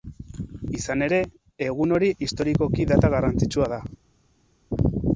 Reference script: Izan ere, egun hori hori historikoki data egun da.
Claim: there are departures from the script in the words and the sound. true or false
true